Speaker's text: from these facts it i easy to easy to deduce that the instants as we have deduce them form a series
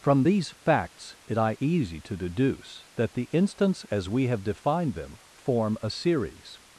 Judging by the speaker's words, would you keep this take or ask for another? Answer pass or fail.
fail